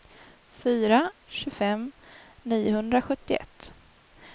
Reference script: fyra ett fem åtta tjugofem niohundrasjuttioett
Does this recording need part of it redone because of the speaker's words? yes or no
yes